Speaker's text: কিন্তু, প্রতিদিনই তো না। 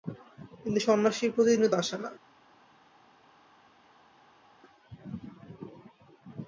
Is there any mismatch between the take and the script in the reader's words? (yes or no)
yes